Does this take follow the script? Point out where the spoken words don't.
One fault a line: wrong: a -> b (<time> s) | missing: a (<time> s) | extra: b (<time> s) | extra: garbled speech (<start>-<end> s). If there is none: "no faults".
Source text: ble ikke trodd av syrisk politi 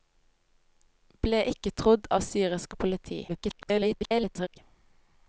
extra: garbled speech (3.3-4.6 s)